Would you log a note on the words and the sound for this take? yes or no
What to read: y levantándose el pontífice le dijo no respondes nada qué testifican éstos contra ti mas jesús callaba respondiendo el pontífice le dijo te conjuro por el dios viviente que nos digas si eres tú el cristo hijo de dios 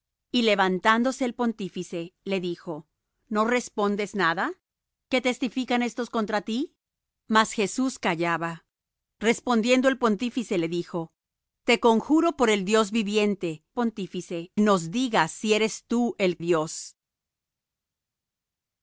yes